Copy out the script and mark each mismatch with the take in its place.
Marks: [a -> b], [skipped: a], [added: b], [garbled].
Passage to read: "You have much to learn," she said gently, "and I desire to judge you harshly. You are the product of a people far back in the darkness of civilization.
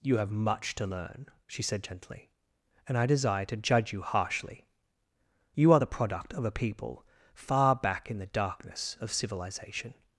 "You have much to learn," she said gently, "and I desire to judge you harshly. You are the product of a people far back in the darkness of civilization.